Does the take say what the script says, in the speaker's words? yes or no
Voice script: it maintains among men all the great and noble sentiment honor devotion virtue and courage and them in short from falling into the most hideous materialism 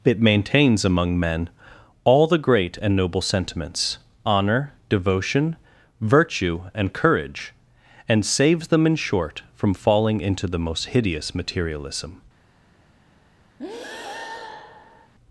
no